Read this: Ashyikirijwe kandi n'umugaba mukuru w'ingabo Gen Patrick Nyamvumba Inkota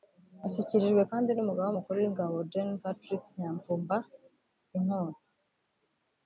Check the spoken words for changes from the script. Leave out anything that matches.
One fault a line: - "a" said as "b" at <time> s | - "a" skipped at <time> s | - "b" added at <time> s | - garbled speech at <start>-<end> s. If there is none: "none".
none